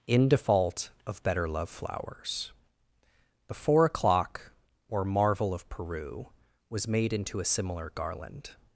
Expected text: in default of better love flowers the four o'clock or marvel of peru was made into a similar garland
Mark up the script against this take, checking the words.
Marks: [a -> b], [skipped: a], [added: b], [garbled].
in default of better love flowers the four o'clock or marvel of peru was made into a similar garland